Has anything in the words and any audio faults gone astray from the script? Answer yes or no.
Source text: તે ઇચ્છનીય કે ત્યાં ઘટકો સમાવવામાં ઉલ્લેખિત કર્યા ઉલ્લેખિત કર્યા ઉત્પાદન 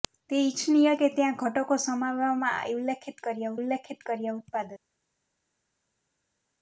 no